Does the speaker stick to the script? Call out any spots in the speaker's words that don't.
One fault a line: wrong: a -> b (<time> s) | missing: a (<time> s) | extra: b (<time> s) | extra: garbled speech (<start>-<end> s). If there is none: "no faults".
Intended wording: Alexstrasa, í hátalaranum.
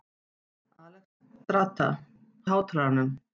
no faults